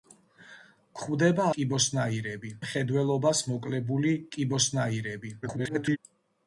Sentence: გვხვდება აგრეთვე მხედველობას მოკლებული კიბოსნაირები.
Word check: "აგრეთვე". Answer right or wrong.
wrong